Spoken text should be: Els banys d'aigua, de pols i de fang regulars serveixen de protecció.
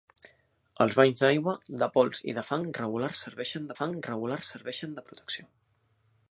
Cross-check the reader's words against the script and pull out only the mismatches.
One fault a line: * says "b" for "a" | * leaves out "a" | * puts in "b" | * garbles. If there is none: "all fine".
* puts in "fang regulars serveixen"